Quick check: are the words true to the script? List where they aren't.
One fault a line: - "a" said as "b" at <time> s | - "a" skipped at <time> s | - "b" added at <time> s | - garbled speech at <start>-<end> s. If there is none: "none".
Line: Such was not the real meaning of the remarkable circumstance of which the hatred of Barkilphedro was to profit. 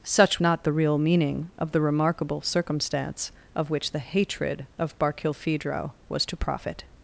- "was" skipped at 0.4 s